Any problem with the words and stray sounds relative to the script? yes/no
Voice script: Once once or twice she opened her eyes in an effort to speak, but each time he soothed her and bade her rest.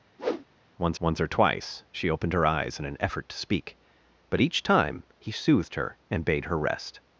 yes